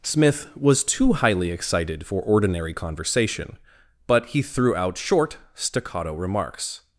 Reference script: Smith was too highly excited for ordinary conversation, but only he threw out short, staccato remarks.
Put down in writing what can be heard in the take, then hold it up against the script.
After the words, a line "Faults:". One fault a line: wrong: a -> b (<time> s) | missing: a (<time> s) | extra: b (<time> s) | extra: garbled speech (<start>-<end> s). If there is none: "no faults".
Smith was too highly excited for ordinary conversation, but he threw out short, staccato remarks.
Faults:
missing: only (4.3 s)